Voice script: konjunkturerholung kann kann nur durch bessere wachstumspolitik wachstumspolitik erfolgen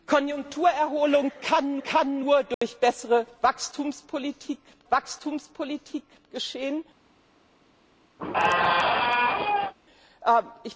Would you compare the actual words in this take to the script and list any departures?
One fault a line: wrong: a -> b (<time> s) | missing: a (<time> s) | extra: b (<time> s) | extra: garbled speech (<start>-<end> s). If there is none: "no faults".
no faults